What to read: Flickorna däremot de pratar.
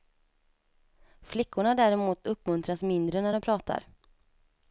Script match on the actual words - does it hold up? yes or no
no